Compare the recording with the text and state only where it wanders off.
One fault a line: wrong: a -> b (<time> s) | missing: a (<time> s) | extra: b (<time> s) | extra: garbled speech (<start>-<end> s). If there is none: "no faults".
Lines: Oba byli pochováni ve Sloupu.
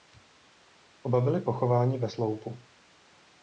no faults